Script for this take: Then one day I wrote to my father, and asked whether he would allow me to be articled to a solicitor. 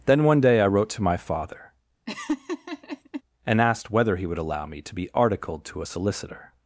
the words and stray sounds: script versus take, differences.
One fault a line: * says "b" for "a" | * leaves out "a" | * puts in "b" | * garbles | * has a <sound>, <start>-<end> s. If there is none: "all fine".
* has a laugh, 2.1-3.2 s